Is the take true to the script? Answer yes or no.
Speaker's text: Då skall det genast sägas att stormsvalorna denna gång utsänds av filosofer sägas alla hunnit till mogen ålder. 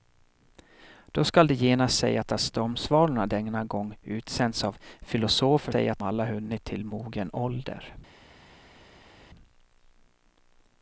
yes